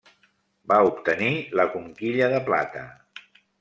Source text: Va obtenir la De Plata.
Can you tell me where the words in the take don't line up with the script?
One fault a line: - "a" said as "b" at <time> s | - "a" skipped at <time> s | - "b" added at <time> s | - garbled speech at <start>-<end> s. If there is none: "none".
- "Conquilla" added at 1.8 s